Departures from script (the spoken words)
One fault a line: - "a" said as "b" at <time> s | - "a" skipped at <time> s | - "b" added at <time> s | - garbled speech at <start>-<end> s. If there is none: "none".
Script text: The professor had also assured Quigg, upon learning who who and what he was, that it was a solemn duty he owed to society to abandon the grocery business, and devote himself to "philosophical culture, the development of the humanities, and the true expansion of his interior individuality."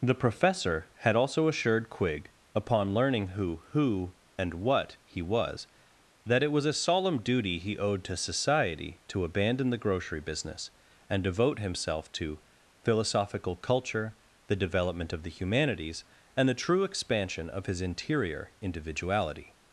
none